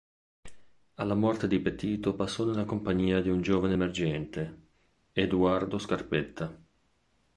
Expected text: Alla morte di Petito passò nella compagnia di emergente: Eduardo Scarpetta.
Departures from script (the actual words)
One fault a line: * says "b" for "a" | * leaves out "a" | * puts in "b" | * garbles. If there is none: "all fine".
* puts in "un giovane"